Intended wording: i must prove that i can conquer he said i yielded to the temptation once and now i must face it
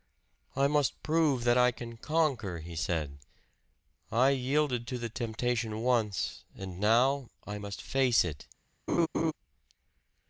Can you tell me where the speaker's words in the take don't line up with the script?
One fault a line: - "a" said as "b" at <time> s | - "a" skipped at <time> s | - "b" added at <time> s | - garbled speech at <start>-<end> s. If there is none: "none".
none